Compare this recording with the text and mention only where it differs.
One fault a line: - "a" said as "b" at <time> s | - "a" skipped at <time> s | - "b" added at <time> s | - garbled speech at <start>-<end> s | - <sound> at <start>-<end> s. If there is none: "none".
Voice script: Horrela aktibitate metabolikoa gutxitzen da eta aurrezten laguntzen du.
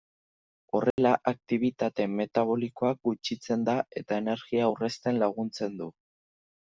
- dropout at 0.9-1.0 s
- "energia" added at 4.2 s